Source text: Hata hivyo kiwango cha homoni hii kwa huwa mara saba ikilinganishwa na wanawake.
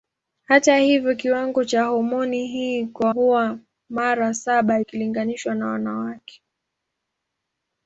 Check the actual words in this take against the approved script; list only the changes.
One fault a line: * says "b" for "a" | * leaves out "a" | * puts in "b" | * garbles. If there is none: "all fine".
all fine